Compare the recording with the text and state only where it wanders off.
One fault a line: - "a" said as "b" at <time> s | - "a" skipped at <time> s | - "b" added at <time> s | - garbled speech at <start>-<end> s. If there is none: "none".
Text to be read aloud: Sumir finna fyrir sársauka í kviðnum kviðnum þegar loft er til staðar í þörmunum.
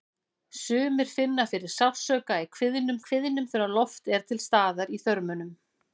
none